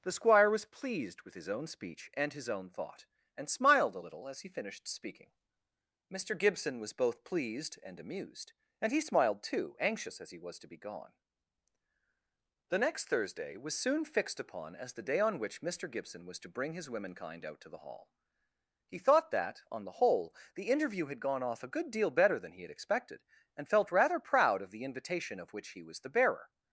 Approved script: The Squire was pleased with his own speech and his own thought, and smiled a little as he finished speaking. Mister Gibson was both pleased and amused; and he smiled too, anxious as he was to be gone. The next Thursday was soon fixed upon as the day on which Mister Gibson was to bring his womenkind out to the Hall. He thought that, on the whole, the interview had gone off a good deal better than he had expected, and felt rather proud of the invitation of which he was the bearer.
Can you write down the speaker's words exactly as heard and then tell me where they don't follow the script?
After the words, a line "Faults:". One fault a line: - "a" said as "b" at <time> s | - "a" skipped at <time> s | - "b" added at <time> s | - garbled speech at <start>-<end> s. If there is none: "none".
The Squire was pleased with his own speech and his own thought, and smiled a little as he finished speaking. Mister Gibson was both pleased and amused; and he smiled too, anxious as he was to be gone. The next Thursday was soon fixed upon as the day on which Mister Gibson was to bring his womenkind out to the Hall. He thought that, on the whole, the interview had gone off a good deal better than he had expected, and felt rather proud of the invitation of which he was the bearer.
Faults:
none